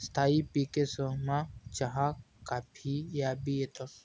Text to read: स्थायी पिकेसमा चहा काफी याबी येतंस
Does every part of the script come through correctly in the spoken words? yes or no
yes